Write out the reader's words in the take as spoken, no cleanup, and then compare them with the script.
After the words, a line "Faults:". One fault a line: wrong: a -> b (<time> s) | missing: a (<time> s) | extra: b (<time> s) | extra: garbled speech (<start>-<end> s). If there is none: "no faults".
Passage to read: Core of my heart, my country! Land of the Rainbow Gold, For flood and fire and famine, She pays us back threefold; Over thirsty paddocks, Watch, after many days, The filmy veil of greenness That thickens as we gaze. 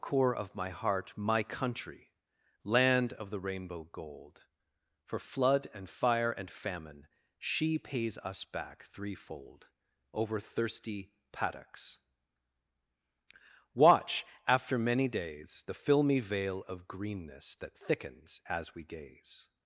Core of my heart, my country! Land of the Rainbow Gold, For flood and fire and famine, She pays us back threefold; Over thirsty paddocks, Watch, after many days, The filmy veil of greenness That thickens as we gaze.
Faults:
no faults